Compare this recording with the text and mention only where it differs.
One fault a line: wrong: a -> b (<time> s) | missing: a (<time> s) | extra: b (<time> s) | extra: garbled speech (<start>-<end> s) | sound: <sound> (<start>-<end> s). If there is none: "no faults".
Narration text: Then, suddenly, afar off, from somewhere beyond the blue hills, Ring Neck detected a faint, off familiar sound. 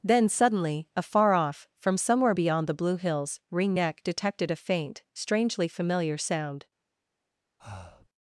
wrong: off -> strangely (5.1 s)
sound: breath (7.6-8.1 s)